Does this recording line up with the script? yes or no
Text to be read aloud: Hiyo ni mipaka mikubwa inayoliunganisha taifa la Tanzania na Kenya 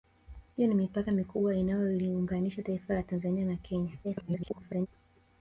no